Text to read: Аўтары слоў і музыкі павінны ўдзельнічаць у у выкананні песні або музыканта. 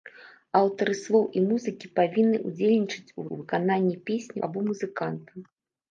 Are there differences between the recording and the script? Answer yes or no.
no